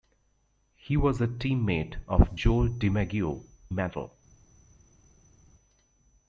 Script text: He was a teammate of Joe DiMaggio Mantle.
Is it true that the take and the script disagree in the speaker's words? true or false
false